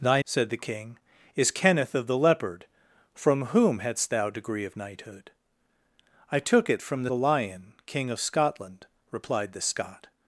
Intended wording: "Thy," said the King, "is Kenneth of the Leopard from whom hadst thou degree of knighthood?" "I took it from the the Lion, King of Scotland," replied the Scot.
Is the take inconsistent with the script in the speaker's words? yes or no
no